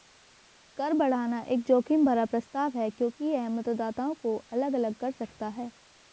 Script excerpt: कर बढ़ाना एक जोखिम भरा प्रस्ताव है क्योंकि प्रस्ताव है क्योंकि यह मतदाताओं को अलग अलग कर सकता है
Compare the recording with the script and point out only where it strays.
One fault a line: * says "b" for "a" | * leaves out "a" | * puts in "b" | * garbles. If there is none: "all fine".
* leaves out "प्रस्ताव है क्योंकि"